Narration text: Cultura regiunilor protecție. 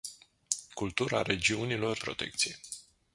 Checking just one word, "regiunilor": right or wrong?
right